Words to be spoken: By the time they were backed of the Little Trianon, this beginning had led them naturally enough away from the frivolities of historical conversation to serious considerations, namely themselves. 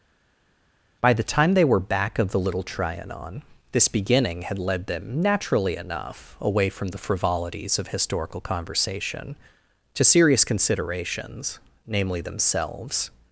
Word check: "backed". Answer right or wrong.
wrong